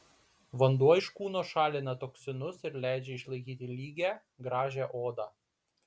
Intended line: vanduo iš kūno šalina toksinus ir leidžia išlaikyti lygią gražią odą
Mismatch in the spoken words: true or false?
false